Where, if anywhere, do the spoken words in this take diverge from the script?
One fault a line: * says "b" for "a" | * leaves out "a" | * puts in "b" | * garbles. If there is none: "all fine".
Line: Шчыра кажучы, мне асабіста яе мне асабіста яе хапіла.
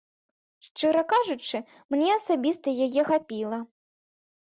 * leaves out "мне асабіста яе"